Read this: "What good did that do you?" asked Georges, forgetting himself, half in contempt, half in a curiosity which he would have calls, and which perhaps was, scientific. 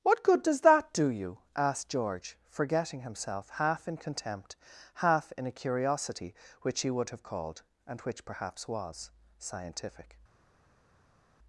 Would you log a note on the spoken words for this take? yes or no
yes